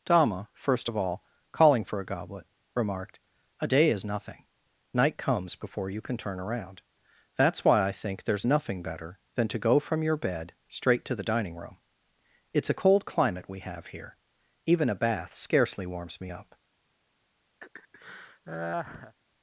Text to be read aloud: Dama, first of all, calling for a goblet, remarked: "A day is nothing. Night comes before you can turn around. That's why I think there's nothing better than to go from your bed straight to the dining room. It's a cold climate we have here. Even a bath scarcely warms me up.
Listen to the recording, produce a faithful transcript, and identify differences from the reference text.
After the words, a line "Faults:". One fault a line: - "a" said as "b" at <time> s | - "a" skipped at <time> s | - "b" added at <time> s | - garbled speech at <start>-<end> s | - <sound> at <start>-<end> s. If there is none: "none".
Dama, first of all, calling for a goblet, remarked: "A day is nothing. Night comes before you can turn around. That's why I think there's nothing better than to go from your bed straight to the dining room. It's a cold climate we have here. Even a bath scarcely warms me up.
Faults:
- laugh at 17.6-19.2 s